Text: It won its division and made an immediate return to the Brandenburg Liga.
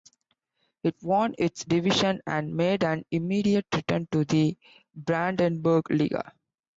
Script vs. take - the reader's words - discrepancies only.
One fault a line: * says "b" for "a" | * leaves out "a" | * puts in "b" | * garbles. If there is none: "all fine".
all fine